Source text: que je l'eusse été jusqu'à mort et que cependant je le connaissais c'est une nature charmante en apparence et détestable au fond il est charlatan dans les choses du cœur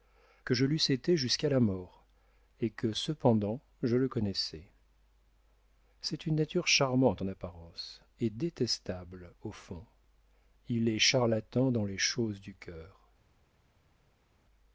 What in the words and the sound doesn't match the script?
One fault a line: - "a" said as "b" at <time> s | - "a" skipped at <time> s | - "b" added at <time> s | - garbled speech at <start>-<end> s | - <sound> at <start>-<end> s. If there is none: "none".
- "la" added at 1.5 s